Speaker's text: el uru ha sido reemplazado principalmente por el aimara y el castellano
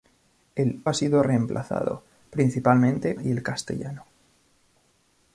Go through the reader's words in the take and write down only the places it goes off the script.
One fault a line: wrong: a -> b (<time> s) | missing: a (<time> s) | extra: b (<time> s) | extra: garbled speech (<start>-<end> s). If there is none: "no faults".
missing: uru (0.8 s)
missing: por el aimara (3.1 s)